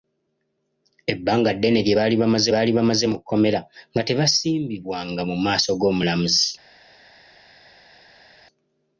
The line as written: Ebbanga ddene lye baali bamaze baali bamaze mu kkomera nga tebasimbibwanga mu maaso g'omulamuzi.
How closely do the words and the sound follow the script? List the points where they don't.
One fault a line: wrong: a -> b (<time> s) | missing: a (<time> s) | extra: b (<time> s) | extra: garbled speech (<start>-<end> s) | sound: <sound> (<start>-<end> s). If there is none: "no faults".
no faults